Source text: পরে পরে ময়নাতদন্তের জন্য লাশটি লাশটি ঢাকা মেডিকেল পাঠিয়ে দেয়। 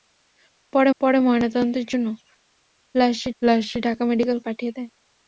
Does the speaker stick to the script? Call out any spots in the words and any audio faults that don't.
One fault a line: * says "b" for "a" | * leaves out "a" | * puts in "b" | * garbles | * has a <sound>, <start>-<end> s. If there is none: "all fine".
all fine